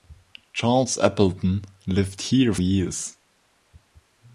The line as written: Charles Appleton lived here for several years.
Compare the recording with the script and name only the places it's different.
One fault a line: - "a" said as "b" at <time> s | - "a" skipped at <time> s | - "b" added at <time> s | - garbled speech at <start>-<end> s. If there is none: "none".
- "for several" skipped at 2.5 s